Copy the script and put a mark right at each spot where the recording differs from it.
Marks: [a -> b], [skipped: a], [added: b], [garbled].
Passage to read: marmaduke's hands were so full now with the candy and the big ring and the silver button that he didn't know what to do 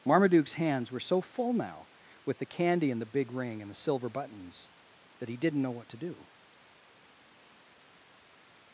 marmaduke's hands were so full now with the candy and the big ring and the silver [button -> buttons] that he didn't know what to do